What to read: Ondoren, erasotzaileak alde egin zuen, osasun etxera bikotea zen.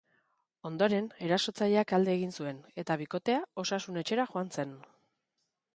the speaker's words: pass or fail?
fail